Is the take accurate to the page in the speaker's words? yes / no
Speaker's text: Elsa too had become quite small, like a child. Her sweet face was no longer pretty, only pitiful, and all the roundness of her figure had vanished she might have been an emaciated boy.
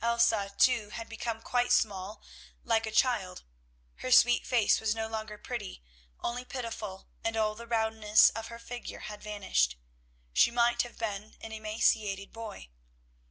yes